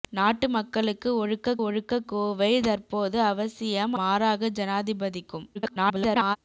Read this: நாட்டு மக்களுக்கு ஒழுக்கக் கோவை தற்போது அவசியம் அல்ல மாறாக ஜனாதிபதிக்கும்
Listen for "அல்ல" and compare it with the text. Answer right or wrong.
wrong